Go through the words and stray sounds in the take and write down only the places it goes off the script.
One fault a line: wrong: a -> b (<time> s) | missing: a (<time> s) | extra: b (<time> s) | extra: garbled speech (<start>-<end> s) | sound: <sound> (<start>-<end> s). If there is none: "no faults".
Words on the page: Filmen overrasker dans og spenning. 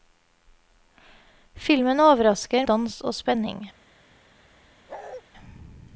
sound: bark (4.9-5.2 s)